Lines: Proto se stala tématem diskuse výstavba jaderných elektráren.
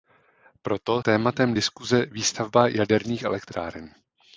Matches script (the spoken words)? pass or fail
fail